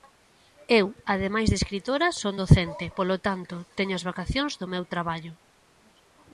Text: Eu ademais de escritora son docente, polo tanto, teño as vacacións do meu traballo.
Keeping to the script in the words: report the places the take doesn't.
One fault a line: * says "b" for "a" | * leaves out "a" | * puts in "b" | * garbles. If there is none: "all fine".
all fine